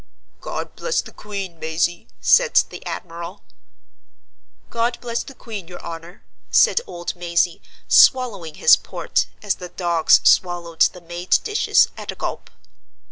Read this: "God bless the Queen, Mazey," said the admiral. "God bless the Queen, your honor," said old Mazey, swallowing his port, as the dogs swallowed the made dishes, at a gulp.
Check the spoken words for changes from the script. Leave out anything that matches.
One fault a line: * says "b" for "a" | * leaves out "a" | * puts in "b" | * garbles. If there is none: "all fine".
all fine